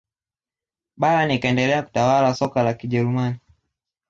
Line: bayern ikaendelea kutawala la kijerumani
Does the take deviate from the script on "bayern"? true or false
false